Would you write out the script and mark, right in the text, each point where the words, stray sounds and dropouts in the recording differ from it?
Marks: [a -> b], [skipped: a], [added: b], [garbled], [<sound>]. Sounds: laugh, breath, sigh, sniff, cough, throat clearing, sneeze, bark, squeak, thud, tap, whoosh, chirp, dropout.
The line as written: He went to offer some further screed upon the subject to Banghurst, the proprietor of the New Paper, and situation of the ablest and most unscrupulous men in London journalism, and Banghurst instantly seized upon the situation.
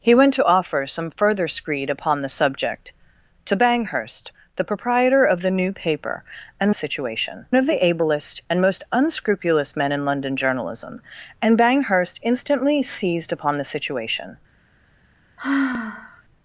He went to offer some further screed upon the subject to Banghurst, the proprietor of the New Paper, and situation of the ablest and most unscrupulous men in London journalism, and Banghurst instantly seized upon the situation. [sigh]